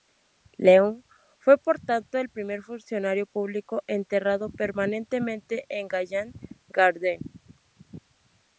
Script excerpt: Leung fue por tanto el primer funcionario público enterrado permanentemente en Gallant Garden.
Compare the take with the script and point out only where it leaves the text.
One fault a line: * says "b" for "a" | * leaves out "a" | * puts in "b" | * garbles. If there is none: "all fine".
all fine